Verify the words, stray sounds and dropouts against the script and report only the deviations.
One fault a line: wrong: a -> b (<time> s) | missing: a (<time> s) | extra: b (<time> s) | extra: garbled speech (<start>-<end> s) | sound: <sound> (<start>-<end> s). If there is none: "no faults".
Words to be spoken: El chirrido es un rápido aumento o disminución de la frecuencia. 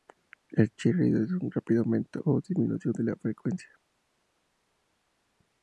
no faults